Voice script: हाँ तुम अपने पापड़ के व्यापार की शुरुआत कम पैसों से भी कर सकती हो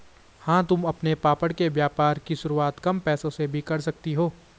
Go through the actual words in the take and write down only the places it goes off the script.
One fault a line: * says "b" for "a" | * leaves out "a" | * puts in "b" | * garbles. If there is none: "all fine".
all fine